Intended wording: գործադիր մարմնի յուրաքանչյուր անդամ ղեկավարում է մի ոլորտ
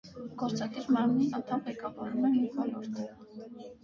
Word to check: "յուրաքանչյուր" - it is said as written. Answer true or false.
false